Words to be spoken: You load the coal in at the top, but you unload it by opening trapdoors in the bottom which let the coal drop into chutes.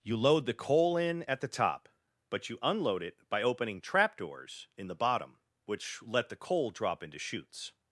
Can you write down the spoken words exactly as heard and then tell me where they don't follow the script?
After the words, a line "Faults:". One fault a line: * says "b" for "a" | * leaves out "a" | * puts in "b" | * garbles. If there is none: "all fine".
You load the coal in at the top, but you unload it by opening trapdoors in the bottom which let the coal drop into chutes.
Faults:
all fine